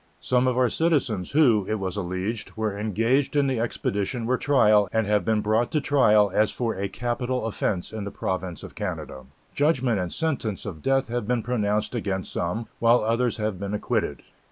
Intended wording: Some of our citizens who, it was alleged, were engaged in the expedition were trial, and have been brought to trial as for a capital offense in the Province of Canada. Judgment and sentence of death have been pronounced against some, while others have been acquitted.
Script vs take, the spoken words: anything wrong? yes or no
no